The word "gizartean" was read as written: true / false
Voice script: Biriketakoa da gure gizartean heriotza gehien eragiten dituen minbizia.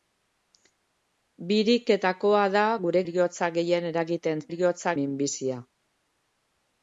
false